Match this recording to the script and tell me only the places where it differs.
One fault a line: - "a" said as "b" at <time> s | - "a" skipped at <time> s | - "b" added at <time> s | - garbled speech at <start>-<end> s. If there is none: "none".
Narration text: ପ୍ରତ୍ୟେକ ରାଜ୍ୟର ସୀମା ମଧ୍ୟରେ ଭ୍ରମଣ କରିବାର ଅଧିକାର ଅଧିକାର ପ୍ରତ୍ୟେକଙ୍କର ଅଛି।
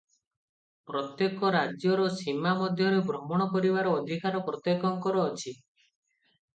- "ଅଧିକାର" skipped at 4.5 s